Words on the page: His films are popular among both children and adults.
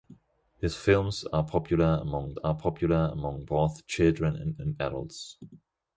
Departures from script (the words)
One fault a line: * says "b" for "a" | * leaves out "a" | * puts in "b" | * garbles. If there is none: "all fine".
* puts in "are popular among"
* puts in "and"